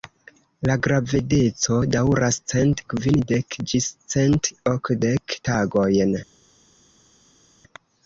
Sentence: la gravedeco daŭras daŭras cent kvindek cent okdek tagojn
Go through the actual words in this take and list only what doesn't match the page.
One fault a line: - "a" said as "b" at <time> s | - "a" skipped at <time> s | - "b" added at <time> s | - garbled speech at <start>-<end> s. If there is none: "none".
- "daŭras" skipped at 2.4 s
- "ĝis" added at 3.7 s